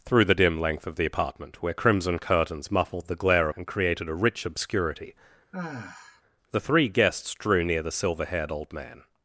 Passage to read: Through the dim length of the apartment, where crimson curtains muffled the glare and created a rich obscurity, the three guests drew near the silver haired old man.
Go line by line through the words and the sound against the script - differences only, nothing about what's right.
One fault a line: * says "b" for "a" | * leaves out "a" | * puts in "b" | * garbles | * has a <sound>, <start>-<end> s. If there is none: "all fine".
* has a sigh, 5.5-6.2 s